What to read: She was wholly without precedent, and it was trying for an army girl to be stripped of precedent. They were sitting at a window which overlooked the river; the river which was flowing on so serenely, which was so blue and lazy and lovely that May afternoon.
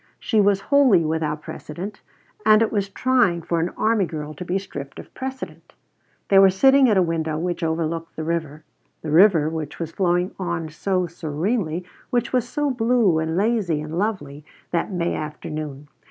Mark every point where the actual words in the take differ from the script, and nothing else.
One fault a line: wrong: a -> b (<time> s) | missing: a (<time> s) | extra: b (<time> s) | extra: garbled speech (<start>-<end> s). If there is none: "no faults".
no faults